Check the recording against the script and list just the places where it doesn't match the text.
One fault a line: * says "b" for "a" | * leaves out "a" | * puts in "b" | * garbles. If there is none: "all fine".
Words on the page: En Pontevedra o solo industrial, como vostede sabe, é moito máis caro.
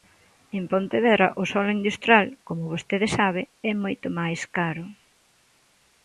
all fine